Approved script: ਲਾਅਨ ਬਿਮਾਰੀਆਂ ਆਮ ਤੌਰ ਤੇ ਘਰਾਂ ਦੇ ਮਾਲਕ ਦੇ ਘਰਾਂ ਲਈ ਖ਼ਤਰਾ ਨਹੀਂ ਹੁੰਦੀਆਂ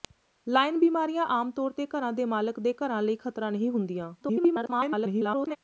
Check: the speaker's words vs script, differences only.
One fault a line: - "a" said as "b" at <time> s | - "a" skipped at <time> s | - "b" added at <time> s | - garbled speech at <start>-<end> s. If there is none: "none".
- garbled speech at 4.2-5.6 s